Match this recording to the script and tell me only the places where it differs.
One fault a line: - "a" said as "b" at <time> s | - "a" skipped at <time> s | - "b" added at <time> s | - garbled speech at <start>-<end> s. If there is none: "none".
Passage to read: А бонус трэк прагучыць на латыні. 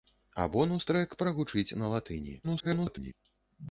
- garbled speech at 2.4-3.1 s